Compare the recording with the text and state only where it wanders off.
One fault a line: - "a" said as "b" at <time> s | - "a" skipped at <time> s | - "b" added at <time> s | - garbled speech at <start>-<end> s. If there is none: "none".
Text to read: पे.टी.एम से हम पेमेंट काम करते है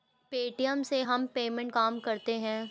none